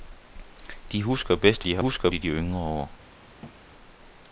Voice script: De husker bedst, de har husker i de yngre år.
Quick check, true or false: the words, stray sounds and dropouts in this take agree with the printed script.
false